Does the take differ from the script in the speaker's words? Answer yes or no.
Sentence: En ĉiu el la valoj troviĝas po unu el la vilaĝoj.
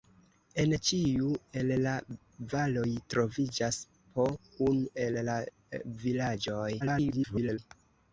yes